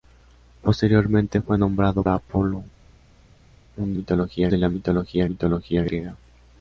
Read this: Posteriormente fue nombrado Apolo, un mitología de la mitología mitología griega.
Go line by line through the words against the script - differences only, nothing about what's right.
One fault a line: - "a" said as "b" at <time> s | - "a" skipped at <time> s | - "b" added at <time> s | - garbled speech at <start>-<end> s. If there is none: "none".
none